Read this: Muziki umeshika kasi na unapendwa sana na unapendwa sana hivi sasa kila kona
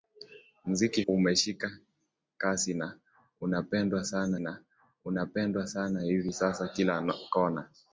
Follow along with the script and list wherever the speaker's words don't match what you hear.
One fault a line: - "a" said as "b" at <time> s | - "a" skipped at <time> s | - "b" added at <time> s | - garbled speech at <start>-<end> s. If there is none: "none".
none